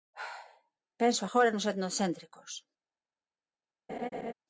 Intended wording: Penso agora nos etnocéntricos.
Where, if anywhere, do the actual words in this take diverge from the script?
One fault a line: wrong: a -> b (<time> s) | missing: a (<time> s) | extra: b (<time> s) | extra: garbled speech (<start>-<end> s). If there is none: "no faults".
no faults